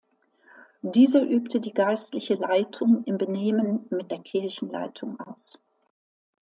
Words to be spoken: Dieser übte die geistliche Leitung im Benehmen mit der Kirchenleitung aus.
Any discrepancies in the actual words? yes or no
no